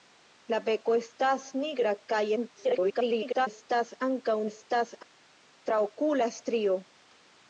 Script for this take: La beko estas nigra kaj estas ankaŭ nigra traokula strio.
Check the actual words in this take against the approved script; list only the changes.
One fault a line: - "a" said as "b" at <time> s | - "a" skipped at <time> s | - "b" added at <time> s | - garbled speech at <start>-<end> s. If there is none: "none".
- garbled speech at 2.4-3.5 s
- "nigra" said as "estas" at 4.5 s